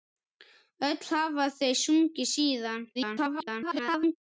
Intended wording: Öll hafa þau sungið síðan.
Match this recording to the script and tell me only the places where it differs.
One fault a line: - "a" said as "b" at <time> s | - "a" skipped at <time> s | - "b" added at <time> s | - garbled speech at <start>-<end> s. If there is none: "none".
- garbled speech at 2.9-4.2 s